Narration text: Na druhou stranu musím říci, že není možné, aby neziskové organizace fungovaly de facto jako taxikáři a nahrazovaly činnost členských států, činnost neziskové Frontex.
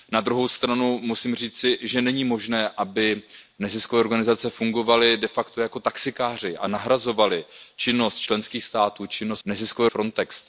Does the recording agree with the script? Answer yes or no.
yes